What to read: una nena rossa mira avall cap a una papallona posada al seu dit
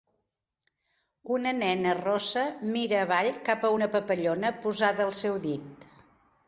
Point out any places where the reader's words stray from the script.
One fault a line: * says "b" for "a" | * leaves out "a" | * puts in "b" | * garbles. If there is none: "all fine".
all fine